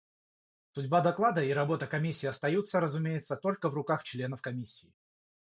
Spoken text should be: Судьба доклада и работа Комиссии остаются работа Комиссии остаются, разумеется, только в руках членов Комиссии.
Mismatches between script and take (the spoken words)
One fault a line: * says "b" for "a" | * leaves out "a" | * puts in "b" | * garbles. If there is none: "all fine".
* leaves out "работа Комиссии остаются"